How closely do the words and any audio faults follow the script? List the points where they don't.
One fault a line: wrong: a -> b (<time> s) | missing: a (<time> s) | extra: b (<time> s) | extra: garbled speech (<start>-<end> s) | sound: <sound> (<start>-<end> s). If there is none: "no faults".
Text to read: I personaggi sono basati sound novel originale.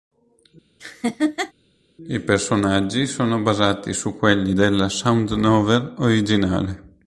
sound: laugh (0.8-1.5 s)
extra: su quelli della (3.9 s)